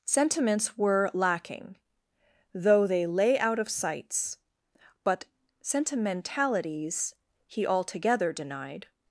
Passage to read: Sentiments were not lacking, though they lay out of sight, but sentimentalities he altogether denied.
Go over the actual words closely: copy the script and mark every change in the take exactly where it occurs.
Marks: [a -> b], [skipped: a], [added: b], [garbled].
Sentiments were [skipped: not] lacking, though they lay out of [sight, -> sights] but sentimentalities he altogether denied.